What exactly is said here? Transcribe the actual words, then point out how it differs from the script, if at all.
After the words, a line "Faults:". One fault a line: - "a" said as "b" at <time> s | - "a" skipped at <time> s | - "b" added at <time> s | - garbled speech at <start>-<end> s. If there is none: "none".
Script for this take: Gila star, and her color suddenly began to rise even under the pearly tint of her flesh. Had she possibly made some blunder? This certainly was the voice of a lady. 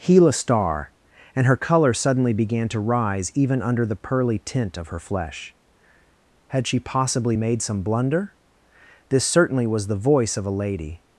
Gila star, and her color suddenly began to rise even under the pearly tint of her flesh. Had she possibly made some blunder? This certainly was the voice of a lady.
Faults:
none